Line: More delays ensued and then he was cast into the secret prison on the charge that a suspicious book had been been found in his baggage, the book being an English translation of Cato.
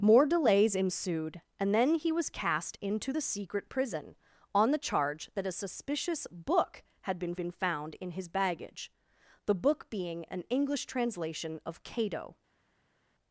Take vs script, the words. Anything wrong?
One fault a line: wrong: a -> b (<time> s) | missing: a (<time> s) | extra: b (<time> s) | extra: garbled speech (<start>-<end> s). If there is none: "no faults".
no faults